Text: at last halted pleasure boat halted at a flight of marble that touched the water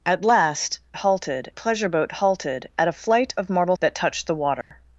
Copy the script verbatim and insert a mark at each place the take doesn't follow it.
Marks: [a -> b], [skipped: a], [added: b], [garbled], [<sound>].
at last halted pleasure boat halted at a flight of marble that touched the water [dropout]